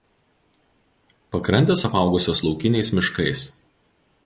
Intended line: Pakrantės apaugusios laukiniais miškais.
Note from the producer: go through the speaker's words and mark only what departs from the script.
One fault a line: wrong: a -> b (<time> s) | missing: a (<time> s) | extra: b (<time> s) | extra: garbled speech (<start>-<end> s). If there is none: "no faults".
no faults